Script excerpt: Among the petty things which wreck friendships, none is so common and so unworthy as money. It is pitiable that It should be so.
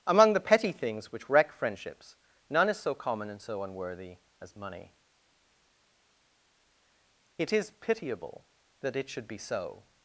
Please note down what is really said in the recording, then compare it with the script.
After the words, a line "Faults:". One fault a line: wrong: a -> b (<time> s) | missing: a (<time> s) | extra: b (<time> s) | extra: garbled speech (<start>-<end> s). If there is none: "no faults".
Among the petty things which wreck friendships, none is so common and so unworthy as money. It is pitiable that It should be so.
Faults:
no faults